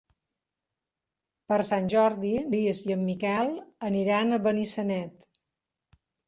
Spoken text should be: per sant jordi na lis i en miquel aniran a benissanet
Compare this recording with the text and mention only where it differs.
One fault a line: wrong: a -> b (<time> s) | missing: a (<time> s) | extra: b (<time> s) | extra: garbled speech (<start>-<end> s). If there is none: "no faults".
missing: na (2.3 s)